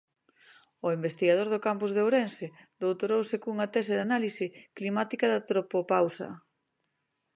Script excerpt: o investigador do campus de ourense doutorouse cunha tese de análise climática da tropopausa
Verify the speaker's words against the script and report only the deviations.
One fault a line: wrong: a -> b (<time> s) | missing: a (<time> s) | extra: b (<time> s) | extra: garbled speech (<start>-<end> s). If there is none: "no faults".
no faults